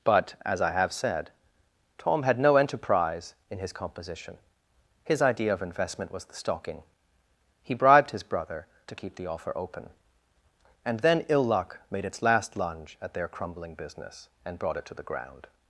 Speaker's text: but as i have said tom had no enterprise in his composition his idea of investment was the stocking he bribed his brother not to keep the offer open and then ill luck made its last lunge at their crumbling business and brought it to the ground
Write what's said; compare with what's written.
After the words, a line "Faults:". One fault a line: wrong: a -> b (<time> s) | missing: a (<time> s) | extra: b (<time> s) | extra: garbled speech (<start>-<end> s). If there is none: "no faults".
but as i have said tom had no enterprise in his composition his idea of investment was the stocking he bribed his brother to keep the offer open and then ill luck made its last lunge at their crumbling business and brought it to the ground
Faults:
missing: not (8.7 s)